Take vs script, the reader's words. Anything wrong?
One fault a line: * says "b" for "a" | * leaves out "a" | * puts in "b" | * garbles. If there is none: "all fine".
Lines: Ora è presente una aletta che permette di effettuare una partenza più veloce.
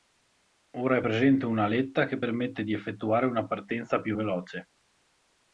all fine